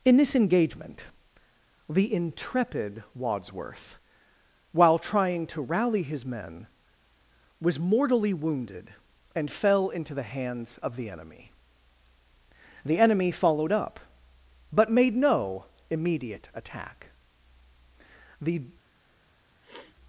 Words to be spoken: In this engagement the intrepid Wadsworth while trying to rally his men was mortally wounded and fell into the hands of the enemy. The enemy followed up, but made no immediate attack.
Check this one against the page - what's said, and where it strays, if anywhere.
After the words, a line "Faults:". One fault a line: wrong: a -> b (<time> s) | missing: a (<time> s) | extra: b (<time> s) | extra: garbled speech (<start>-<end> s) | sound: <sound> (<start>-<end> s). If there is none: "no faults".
In this engagement the intrepid Wadsworth while trying to rally his men was mortally wounded and fell into the hands of the enemy. The enemy followed up, but made no immediate attack. The
Faults:
extra: The (18.4 s)
sound: sniff (19.6-20.0 s)